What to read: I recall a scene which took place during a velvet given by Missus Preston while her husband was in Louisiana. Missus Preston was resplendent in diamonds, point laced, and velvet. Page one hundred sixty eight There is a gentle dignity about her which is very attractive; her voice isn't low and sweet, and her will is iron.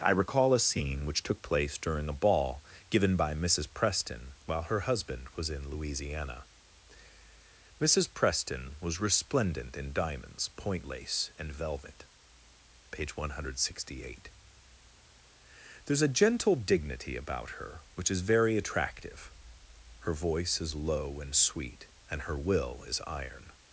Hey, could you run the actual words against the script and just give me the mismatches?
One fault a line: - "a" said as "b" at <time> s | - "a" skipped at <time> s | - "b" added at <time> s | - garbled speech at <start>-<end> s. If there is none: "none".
- "velvet" said as "ball" at 2.1 s
- "laced" said as "lace" at 10.8 s
- "isn't" said as "is" at 20.6 s